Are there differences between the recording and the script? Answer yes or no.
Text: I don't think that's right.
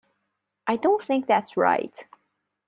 no